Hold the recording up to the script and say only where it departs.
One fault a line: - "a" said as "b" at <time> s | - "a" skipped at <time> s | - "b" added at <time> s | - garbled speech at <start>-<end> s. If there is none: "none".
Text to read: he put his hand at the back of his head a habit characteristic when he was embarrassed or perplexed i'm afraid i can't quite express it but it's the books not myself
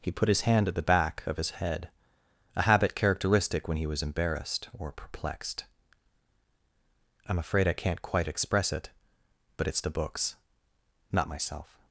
none